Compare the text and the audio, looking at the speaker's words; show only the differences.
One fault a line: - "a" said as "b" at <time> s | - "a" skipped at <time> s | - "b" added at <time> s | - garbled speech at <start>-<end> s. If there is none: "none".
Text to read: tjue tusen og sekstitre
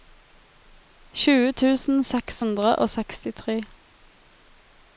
- "seks hundre" added at 2.1 s